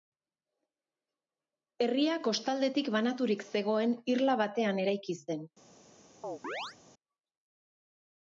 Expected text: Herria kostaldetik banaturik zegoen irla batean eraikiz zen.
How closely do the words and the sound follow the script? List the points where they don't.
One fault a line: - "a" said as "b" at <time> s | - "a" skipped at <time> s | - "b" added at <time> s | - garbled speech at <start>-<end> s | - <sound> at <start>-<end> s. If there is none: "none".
- chirp at 6.2-6.8 s